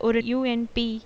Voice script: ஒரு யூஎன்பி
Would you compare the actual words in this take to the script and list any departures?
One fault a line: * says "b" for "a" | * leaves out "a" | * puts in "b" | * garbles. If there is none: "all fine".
all fine